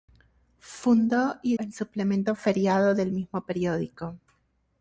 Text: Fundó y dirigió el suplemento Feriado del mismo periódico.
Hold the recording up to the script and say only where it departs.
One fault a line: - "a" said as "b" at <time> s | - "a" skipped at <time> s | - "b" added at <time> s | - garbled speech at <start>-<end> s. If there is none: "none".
- "dirigió" skipped at 1.6 s